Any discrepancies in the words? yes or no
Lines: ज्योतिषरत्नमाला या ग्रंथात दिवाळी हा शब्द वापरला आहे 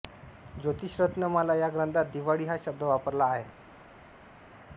no